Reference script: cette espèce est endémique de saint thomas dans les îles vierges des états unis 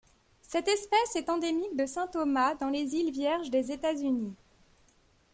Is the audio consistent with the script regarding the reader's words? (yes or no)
yes